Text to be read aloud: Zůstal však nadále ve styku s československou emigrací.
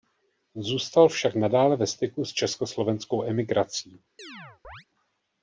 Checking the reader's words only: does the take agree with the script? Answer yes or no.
yes